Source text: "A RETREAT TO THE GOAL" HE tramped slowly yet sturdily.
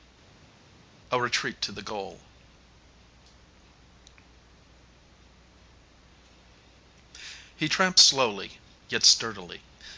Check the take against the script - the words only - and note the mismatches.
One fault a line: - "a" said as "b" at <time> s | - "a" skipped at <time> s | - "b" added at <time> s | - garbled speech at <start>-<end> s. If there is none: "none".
none